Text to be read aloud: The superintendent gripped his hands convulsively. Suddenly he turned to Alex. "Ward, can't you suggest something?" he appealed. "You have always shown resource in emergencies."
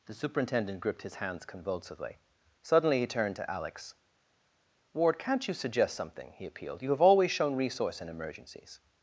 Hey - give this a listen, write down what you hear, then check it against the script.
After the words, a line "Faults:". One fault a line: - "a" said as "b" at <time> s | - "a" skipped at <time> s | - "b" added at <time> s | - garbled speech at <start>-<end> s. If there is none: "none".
The superintendent gripped his hands convulsively. Suddenly he turned to Alex. "Ward, can't you suggest something?" he appealed. "You have always shown resource in emergencies."
Faults:
none